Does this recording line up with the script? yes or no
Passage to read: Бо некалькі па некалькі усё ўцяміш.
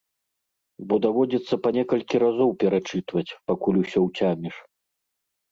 no